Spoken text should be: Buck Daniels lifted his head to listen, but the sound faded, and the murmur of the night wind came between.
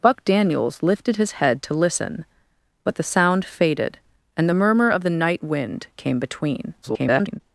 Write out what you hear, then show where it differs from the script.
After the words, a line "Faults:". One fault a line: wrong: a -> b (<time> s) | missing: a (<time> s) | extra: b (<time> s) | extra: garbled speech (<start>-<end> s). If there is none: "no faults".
Buck Daniels lifted his head to listen, but the sound faded, and the murmur of the night wind came between. [garbled]
Faults:
extra: garbled speech (6.8-7.4 s)